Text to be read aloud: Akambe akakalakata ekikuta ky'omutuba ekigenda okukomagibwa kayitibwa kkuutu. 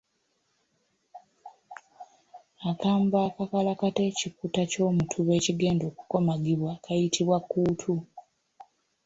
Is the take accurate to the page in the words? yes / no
yes